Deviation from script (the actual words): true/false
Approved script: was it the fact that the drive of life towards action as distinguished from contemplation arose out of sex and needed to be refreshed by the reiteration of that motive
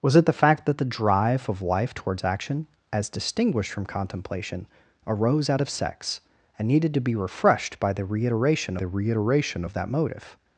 true